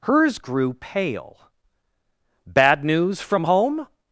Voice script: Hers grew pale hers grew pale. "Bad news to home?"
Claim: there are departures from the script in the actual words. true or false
true